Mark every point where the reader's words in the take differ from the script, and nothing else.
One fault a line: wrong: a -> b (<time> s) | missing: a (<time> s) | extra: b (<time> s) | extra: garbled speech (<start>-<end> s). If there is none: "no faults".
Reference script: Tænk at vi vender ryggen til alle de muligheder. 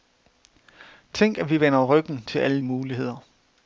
missing: de (2.6 s)